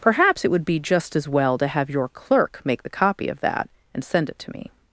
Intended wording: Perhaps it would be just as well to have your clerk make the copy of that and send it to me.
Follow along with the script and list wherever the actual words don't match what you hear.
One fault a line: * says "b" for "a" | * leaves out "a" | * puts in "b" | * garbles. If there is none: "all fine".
all fine